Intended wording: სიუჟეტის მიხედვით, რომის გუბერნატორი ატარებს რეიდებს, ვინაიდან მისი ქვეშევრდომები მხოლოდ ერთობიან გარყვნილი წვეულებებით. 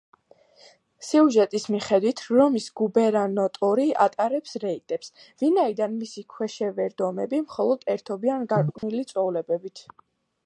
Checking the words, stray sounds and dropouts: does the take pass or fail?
fail